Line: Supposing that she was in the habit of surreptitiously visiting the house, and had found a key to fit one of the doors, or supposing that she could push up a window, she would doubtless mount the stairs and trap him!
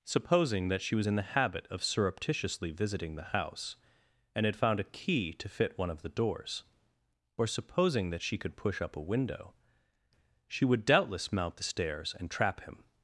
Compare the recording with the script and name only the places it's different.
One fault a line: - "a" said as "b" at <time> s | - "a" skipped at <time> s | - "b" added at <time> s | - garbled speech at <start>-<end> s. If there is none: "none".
none